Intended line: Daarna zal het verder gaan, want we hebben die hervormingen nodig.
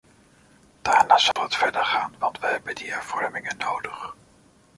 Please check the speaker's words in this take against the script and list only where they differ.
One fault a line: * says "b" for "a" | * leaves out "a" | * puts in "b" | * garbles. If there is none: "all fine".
all fine